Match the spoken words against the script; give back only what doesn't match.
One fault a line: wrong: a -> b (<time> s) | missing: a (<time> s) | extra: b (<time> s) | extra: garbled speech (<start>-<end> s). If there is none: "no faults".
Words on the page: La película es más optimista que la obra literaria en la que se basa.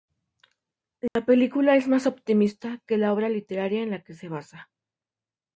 no faults